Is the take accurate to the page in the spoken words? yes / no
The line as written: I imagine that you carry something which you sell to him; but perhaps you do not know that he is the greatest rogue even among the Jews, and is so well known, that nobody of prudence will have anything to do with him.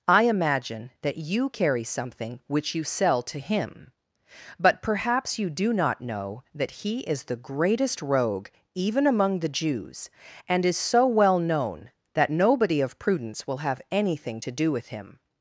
yes